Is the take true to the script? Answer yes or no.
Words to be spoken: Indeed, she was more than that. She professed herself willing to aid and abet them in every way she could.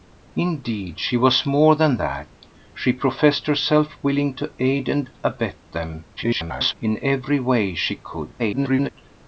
no